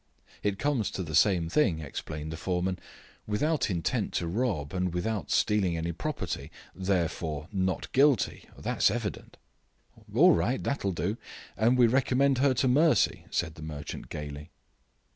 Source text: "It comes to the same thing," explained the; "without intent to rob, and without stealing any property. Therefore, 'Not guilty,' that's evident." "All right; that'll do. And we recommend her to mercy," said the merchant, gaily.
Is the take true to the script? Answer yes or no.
no